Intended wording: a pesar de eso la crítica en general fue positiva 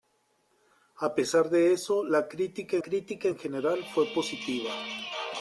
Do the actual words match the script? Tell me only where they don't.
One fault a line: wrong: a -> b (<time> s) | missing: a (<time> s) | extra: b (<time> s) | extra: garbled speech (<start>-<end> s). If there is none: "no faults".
extra: crítica (2.8 s)